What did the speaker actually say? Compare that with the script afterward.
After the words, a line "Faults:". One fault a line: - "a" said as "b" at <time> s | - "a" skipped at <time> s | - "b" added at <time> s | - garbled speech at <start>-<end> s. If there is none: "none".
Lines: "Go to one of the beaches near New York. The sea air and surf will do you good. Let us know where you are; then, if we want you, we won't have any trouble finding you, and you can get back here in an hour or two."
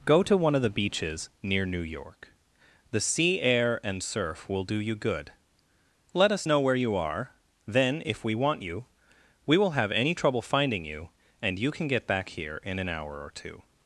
"Go to one of the beaches near New York. The sea air and surf will do you good. Let us know where you are; then, if we want you, we will have any trouble finding you, and you can get back here in an hour or two."
Faults:
- "won't" said as "will" at 9.6 s